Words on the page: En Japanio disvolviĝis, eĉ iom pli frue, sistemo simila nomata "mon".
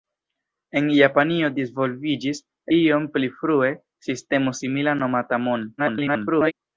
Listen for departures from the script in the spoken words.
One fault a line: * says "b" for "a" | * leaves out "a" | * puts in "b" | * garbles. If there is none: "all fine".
* leaves out "eĉ"
* garbles